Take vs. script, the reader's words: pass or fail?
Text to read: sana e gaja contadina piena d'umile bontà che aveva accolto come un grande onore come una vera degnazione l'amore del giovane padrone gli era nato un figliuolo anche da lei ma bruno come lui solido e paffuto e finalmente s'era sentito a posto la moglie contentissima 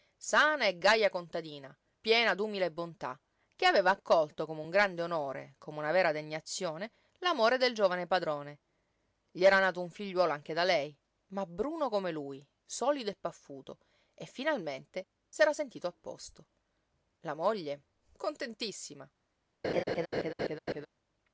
pass